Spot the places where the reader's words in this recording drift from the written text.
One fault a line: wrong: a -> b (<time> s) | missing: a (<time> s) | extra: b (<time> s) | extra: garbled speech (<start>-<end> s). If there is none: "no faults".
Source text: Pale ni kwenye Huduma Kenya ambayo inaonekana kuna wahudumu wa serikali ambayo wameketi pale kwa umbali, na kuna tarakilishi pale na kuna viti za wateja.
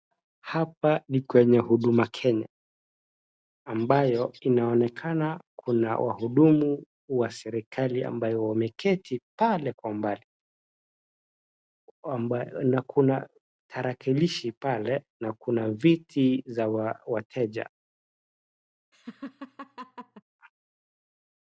wrong: Pale -> Hapa (0.4 s)